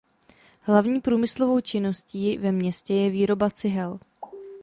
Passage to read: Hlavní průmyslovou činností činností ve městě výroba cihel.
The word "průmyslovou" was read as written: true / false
true